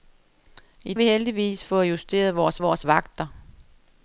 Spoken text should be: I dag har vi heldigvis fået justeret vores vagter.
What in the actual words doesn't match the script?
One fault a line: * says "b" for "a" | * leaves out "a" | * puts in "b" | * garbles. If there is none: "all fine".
* leaves out "dag har"
* puts in "vores"